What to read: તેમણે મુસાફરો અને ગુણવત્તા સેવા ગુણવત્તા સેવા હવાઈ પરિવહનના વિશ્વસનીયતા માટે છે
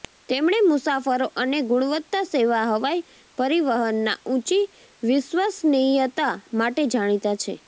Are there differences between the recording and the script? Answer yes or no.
yes